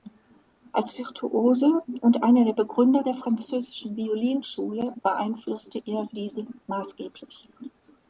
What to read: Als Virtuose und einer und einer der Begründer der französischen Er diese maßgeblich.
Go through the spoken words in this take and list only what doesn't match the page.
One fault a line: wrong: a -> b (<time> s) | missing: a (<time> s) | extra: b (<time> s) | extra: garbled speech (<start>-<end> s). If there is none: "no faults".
missing: und einer (2.4 s)
extra: Violinschule beeinflusste (4.0 s)